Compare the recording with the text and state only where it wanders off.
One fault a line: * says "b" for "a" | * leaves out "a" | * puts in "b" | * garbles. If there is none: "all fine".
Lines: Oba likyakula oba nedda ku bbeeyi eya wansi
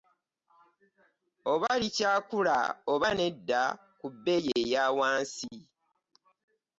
all fine